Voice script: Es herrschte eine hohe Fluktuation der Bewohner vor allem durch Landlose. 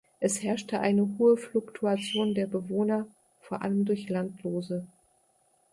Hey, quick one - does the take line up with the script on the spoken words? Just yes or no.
yes